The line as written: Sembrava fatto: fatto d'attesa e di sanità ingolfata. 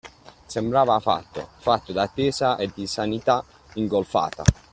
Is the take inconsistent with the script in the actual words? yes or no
no